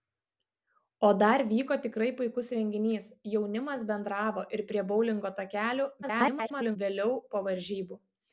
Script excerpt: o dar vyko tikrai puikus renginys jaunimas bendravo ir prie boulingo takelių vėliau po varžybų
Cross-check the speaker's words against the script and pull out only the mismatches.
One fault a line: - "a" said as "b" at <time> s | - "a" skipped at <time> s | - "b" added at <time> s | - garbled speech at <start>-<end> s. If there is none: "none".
- garbled speech at 6.0-6.8 s